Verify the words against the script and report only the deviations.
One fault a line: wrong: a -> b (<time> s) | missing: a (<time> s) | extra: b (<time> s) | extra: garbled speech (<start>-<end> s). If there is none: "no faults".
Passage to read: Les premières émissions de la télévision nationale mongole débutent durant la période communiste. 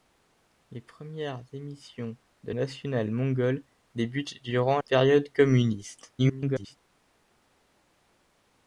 missing: la télévision (2.5 s)
missing: la (4.8 s)
extra: garbled speech (6.2-6.8 s)